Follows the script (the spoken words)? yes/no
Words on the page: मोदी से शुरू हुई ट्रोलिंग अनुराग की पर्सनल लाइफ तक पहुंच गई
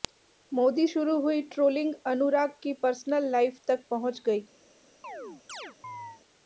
no